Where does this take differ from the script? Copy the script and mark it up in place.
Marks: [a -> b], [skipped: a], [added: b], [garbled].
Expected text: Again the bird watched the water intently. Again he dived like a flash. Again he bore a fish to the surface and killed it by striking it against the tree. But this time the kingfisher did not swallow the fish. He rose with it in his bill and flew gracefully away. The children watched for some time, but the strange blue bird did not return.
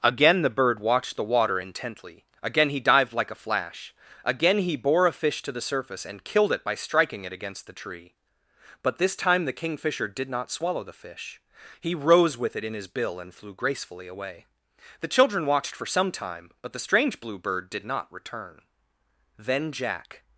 Again the bird watched the water intently. Again he dived like a flash. Again he bore a fish to the surface and killed it by striking it against the tree. But this time the kingfisher did not swallow the fish. He rose with it in his bill and flew gracefully away. The children watched for some time, but the strange blue bird did not return. [added: Then Jack]